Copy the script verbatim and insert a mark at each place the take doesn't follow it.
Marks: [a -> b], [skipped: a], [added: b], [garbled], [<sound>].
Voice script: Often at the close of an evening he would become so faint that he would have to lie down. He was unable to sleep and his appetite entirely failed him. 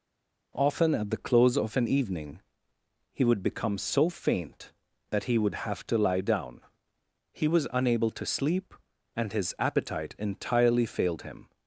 Often at the close of an evening he would become so faint that he would have to lie down. He was unable to sleep and his appetite entirely failed him.